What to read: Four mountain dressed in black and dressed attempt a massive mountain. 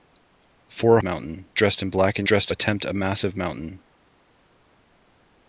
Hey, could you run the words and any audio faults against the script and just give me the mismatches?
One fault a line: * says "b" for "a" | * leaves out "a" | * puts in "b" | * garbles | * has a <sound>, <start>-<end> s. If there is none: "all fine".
all fine